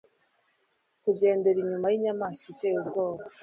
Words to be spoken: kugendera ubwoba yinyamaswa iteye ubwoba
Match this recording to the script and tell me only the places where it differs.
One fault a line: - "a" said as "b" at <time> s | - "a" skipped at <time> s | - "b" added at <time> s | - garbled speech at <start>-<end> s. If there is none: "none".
- "ubwoba" said as "inyuma" at 1.6 s